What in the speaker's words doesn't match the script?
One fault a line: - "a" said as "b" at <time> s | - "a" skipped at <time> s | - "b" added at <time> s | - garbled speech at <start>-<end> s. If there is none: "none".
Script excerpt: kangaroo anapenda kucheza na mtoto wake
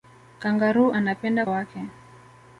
- "kucheza na mtoto" skipped at 1.4 s